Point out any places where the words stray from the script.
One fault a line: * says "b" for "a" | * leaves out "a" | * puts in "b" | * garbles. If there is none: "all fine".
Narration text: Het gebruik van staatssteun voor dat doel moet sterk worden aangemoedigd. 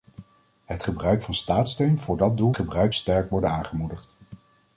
* says "gebruik" for "moet"